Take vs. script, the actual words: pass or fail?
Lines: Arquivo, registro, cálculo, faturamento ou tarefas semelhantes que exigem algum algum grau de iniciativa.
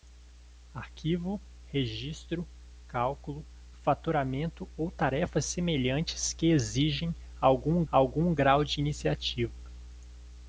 pass